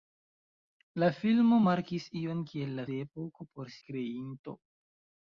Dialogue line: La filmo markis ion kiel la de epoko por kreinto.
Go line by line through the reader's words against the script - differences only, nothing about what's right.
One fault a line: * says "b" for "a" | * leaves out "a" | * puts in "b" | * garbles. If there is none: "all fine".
all fine